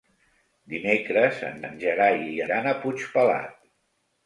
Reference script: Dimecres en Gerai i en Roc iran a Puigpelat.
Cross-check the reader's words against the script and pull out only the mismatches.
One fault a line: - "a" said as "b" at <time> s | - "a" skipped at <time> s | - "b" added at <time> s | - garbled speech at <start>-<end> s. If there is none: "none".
- "en" added at 1.7 s
- "en Roc" skipped at 2.4 s